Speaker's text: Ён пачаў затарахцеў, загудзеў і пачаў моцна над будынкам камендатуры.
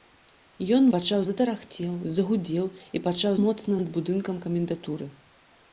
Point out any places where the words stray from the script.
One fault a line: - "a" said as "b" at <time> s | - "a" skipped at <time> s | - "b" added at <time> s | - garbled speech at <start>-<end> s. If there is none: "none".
none